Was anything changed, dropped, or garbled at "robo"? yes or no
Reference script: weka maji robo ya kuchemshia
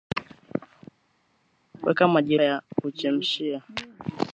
yes